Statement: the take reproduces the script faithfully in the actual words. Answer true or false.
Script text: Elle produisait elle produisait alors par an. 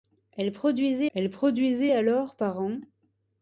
true